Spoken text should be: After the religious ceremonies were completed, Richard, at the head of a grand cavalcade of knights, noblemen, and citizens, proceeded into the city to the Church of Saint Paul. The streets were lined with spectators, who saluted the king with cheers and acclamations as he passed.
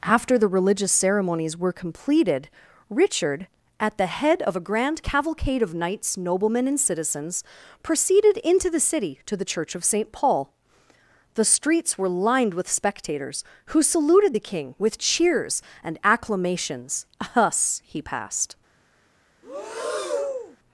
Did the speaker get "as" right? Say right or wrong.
wrong